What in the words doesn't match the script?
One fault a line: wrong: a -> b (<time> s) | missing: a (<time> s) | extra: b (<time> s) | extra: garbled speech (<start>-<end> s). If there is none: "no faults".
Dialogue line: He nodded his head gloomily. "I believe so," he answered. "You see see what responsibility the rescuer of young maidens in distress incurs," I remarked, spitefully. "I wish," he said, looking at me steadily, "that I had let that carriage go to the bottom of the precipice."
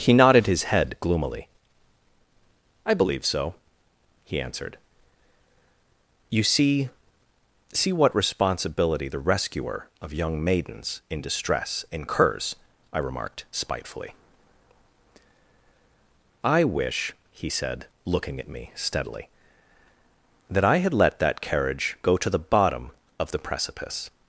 no faults